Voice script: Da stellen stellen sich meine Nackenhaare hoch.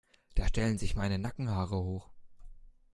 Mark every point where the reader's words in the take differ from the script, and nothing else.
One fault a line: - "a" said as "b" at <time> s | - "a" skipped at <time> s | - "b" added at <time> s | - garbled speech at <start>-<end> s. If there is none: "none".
- "stellen" skipped at 0.8 s